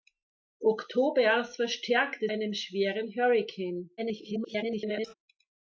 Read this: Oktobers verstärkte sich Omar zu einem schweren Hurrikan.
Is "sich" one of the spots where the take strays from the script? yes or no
yes